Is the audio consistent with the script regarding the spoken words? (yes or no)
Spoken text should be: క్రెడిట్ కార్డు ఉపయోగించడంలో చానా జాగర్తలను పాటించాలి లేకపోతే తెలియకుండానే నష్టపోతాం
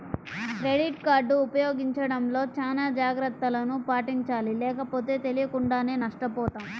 yes